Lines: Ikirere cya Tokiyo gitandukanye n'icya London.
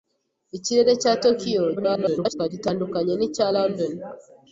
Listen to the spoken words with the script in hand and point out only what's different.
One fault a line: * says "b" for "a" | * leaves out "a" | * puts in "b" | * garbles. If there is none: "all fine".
* garbles